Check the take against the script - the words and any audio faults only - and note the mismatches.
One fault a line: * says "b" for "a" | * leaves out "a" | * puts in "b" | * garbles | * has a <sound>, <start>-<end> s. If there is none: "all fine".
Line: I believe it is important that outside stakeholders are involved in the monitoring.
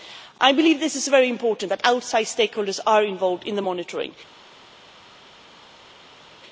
* puts in "very"